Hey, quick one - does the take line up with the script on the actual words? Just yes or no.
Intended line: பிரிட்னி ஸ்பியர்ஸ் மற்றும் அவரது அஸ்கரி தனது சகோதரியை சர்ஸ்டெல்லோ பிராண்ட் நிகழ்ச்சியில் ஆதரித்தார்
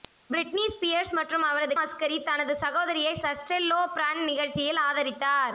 yes